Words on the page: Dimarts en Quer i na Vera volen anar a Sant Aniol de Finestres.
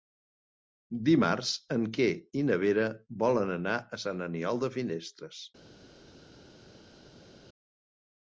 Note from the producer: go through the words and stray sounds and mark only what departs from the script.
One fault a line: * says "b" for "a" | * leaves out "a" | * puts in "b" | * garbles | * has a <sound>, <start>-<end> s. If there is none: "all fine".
all fine